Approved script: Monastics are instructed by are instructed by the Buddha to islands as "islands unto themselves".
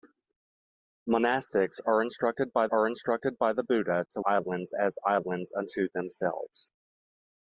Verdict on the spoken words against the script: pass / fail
pass